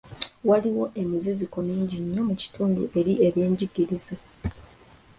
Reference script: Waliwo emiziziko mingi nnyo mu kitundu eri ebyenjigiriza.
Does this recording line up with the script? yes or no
yes